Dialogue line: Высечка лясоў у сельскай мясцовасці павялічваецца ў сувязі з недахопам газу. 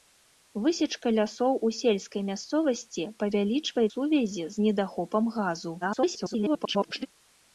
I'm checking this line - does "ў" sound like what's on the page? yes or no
no